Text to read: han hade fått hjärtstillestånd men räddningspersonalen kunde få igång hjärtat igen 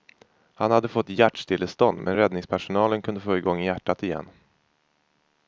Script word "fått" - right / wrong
right